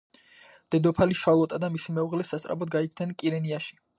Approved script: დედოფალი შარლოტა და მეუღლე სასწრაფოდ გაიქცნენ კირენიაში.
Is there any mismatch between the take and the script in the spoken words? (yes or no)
yes